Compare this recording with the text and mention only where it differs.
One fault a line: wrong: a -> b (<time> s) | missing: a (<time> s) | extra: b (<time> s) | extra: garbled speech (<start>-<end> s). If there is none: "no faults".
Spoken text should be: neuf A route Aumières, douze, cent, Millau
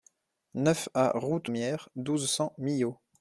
no faults